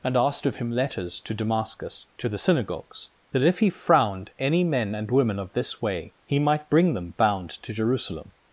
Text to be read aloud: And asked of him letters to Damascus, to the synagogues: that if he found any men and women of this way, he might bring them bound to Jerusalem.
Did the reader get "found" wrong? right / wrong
wrong